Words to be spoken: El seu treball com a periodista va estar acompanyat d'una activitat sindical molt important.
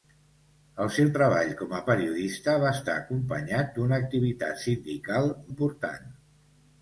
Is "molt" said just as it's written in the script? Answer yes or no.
no